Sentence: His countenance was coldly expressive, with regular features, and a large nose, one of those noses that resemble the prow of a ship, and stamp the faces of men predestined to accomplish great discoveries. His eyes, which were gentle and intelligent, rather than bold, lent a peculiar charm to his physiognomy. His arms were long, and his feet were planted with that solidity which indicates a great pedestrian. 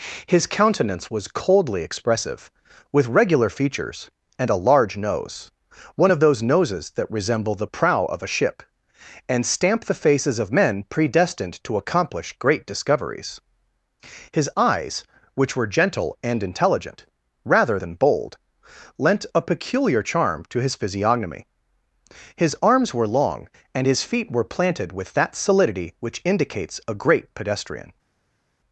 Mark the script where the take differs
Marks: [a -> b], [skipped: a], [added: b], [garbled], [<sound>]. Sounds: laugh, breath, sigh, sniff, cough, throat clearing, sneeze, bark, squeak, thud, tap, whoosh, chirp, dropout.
His countenance was coldly expressive, with regular features, and a large nose, one of those noses that resemble the prow of a ship, and stamp the faces of men predestined to accomplish great discoveries. His eyes, which were gentle and intelligent, rather than bold, lent a peculiar charm to his physiognomy. His arms were long, and his feet were planted with that solidity which indicates a great pedestrian.